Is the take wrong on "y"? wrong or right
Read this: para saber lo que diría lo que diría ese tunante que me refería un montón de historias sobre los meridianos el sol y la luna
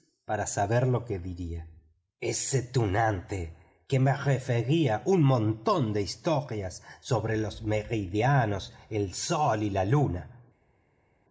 right